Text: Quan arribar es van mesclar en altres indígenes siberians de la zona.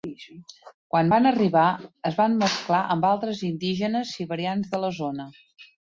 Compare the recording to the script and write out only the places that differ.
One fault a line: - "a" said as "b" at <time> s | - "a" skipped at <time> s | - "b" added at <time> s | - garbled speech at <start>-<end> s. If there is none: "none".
- "van" added at 1.1 s
- "en" said as "amb" at 2.9 s